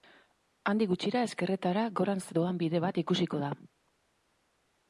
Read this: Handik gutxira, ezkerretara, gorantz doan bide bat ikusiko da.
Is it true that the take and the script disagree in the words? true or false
false